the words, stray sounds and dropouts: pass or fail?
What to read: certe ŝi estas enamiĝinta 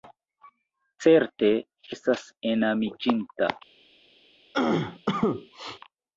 fail